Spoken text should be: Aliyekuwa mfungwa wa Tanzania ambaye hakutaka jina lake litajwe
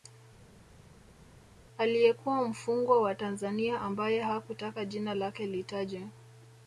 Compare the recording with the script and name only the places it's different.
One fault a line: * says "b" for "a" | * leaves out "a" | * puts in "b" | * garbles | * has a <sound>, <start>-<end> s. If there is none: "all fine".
all fine